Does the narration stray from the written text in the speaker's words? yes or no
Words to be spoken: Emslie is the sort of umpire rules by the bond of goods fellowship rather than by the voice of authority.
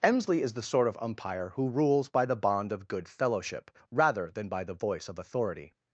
yes